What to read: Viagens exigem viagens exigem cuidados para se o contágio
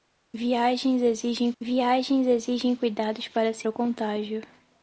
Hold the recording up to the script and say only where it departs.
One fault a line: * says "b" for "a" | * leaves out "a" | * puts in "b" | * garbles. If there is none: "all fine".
all fine